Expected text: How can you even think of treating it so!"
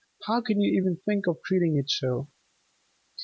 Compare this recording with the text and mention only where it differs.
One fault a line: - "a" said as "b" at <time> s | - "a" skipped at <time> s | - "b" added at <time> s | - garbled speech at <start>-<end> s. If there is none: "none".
none